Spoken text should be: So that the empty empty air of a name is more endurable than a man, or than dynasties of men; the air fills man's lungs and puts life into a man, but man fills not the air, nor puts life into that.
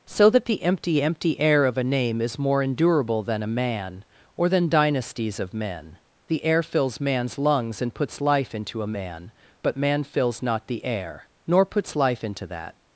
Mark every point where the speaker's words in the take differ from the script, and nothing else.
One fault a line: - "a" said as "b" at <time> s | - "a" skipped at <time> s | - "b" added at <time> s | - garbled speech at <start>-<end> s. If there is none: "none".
none